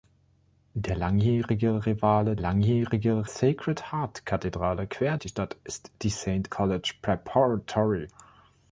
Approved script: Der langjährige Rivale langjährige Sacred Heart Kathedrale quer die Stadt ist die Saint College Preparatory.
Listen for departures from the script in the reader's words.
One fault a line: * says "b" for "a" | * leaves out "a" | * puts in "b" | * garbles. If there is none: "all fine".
all fine